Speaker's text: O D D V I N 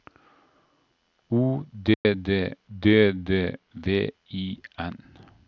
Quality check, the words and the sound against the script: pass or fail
fail